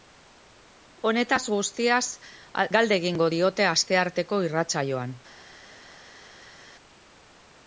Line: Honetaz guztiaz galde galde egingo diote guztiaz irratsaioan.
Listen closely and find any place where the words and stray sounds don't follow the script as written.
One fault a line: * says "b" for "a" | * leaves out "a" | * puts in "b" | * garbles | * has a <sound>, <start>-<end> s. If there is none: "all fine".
* leaves out "galde"
* says "astearteko" for "guztiaz"